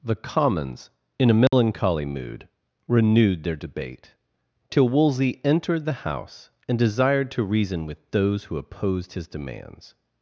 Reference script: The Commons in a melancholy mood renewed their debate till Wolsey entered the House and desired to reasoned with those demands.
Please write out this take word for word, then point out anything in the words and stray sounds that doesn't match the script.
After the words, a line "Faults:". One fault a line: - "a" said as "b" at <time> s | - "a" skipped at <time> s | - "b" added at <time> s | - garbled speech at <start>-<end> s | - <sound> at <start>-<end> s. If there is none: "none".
The Commons in a melancholy mood renewed their debate till Wolsey entered the House and desired to reason with those who opposed his demands.
Faults:
- dropout at 1.5-1.5 s
- "reasoned" said as "reason" at 7.4 s
- "who opposed his" added at 8.4 s